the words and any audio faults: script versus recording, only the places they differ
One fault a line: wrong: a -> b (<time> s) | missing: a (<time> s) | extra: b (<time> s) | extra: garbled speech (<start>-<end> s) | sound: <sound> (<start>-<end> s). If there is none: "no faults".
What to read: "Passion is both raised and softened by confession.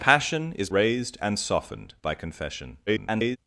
missing: both (0.7 s)
extra: garbled speech (2.9-3.4 s)